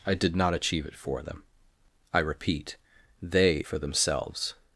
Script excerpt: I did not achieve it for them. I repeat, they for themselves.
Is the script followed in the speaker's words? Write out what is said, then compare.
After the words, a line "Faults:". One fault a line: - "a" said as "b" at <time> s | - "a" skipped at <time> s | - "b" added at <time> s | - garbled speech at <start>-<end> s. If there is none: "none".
I did not achieve it for them. I repeat, they for themselves.
Faults:
none